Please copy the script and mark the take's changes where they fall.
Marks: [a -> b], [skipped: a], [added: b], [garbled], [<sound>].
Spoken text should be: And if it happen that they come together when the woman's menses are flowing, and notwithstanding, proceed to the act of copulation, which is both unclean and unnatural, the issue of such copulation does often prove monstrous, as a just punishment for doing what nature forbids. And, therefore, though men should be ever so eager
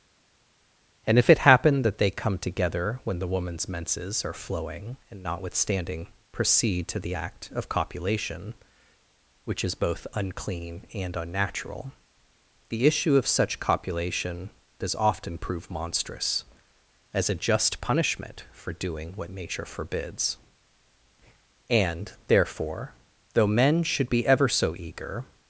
And if it happen that they come together when the woman's menses are flowing, and notwithstanding, proceed to the act of copulation, which is both unclean and unnatural, the issue of such copulation does often prove monstrous, as a just punishment for doing what nature forbids. And, therefore, though men should be ever so eager